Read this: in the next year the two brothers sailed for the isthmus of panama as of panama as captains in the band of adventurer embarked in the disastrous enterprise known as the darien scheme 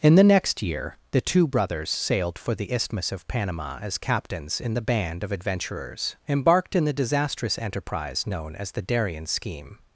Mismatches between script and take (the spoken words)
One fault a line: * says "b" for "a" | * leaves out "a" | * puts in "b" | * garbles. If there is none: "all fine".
* leaves out "of panama as"
* says "adventurers" for "adventurer"